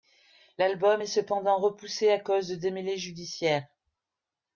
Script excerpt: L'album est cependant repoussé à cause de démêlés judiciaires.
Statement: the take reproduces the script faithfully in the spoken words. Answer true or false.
true